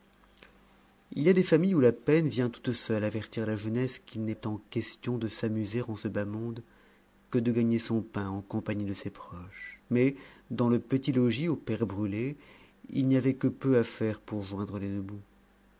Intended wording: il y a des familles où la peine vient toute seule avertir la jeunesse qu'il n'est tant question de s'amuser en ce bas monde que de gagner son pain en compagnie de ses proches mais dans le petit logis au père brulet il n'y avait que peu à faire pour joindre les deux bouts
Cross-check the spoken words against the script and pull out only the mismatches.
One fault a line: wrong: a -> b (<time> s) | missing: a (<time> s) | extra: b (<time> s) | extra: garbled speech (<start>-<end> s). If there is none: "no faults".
no faults